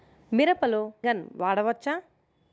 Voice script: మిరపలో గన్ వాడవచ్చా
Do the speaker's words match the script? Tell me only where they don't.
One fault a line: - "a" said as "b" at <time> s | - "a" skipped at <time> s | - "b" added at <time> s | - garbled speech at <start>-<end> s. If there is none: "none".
none